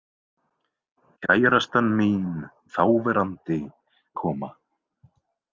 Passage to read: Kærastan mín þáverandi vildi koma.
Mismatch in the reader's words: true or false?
true